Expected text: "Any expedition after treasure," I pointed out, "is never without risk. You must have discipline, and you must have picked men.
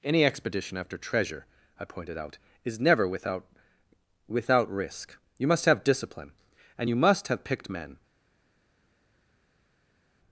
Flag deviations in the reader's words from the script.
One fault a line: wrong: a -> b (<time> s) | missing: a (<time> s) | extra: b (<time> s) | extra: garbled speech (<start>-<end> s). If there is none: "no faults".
extra: without (4.3 s)